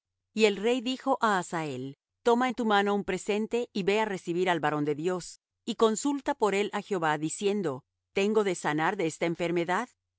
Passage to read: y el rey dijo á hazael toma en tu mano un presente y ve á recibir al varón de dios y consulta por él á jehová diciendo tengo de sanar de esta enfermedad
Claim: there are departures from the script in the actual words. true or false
false